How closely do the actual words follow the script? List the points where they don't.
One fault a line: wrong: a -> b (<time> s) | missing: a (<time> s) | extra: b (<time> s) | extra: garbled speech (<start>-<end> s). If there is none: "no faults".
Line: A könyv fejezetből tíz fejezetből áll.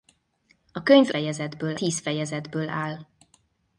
no faults